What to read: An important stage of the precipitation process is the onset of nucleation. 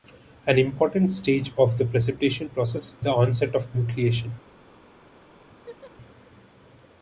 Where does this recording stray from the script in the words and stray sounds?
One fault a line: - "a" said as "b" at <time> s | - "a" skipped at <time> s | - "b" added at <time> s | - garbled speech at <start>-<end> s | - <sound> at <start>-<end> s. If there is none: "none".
- "is" skipped at 3.0 s
- laugh at 5.5-5.9 s